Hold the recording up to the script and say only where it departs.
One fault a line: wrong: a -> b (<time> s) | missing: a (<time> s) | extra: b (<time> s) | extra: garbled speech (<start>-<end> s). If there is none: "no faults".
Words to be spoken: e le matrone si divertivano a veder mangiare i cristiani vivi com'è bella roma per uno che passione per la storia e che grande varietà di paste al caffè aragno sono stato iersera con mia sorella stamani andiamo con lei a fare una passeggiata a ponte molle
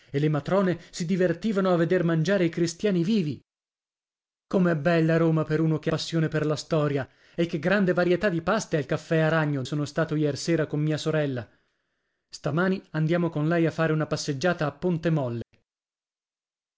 no faults